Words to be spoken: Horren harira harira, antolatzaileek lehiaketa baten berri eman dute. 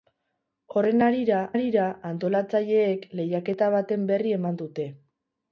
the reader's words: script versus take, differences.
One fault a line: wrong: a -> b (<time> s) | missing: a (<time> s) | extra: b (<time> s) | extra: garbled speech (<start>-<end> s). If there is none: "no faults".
no faults